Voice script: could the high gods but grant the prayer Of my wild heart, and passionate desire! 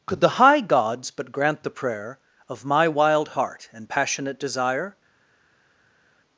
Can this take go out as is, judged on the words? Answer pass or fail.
pass